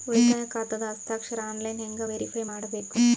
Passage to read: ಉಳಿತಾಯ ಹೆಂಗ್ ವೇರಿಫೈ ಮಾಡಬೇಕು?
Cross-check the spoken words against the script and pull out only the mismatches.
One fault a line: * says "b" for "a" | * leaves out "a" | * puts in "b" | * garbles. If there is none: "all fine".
* puts in "ಖಾತಾದ ಹಸ್ತಾಕ್ಷರ ಆನ್ಲೈನ್"